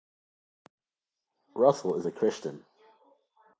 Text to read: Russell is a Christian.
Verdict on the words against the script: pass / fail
pass